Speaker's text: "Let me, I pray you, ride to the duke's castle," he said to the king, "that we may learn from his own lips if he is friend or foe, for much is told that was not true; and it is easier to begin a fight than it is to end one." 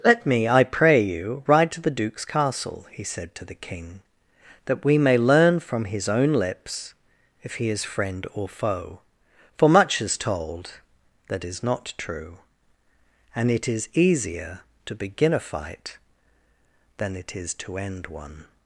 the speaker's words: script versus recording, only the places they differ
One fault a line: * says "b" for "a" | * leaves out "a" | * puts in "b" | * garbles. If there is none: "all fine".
* says "is" for "was"